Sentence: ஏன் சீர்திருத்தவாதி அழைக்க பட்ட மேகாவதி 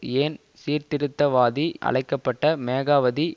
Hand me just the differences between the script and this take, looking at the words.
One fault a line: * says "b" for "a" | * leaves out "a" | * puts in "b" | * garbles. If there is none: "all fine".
all fine